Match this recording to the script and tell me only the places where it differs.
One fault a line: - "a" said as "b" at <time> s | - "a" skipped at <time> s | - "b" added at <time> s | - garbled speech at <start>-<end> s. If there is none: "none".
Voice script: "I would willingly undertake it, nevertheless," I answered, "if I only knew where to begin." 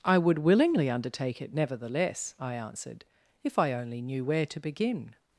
none